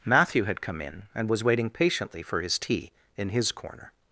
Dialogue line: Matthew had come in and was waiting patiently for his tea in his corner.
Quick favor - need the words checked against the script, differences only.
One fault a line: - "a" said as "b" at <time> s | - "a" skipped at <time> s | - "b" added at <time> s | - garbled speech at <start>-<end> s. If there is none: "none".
none